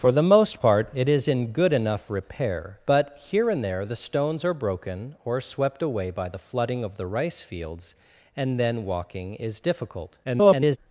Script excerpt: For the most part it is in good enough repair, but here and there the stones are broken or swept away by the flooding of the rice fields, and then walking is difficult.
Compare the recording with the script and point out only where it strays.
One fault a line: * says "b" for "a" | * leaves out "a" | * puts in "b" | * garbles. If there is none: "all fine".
* garbles